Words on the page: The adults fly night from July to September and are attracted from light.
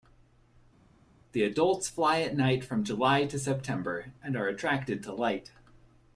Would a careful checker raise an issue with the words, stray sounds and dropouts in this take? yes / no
yes